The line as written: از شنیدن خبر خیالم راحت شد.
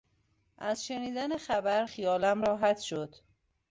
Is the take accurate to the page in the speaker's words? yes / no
yes